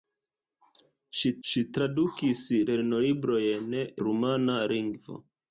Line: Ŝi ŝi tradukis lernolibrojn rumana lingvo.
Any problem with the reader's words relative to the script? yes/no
no